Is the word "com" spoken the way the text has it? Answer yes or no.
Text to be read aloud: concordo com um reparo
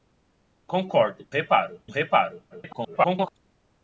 no